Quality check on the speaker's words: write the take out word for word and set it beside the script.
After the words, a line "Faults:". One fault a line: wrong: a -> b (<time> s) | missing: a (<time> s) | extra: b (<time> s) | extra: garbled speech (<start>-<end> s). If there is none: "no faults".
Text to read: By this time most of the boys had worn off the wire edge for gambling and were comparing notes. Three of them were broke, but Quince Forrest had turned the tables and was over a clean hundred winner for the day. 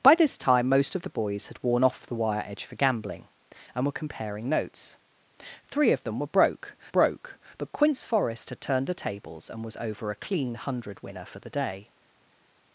By this time most of the boys had worn off the wire edge for gambling and were comparing notes. Three of them were broke broke, but Quince Forrest had turned the tables and was over a clean hundred winner for the day.
Faults:
extra: broke (6.9 s)